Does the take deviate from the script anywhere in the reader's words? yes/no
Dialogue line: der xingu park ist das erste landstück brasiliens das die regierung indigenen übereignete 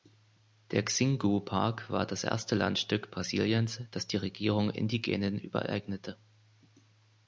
yes